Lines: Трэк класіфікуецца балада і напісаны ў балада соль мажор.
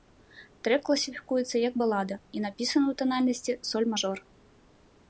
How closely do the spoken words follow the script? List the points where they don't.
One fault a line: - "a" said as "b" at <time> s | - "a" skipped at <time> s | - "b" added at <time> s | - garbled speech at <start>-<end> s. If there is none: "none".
- "як" added at 1.7 s
- "балада" said as "танальнасці" at 3.0 s